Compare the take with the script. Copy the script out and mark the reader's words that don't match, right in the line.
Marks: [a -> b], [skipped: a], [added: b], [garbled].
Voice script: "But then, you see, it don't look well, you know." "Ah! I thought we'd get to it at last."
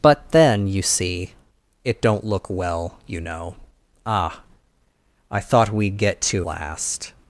"But then, you see, it don't look well, you know." "Ah! I thought we'd get to [skipped: it at] last."